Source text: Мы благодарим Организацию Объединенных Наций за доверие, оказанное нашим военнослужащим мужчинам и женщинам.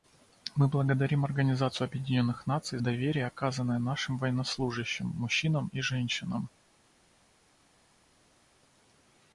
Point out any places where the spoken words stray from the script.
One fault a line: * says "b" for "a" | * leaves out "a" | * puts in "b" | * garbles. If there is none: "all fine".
* leaves out "за"